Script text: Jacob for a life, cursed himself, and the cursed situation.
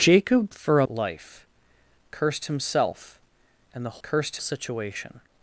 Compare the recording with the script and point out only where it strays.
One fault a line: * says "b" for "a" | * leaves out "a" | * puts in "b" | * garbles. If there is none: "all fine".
all fine